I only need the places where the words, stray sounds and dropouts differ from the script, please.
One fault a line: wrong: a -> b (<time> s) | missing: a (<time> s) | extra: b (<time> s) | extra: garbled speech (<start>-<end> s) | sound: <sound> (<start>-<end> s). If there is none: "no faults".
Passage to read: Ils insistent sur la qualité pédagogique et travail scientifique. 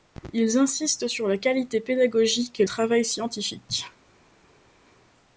no faults